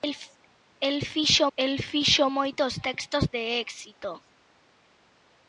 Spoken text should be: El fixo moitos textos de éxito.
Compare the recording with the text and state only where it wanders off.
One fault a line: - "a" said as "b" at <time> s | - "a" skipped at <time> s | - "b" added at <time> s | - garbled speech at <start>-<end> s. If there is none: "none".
- "el fixo" added at 1.6 s